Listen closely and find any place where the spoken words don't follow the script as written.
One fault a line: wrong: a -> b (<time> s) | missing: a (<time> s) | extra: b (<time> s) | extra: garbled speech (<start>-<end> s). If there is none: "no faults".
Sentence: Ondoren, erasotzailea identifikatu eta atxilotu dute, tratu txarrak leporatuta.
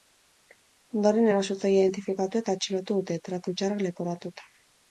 no faults